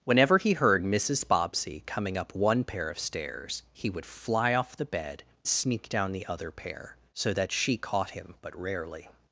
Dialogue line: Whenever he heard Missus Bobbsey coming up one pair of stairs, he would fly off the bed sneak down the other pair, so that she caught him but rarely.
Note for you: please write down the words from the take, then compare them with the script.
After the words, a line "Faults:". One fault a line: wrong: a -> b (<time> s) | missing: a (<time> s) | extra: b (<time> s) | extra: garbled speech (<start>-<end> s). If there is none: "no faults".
Whenever he heard Missus Bobbsey coming up one pair of stairs, he would fly off the bed sneak down the other pair, so that she caught him but rarely.
Faults:
no faults